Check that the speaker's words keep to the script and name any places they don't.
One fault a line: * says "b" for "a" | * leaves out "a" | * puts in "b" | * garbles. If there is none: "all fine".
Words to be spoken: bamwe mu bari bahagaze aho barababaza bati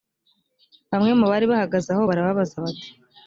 all fine